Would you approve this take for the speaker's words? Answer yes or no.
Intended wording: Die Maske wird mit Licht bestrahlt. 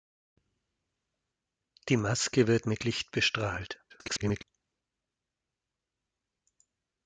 no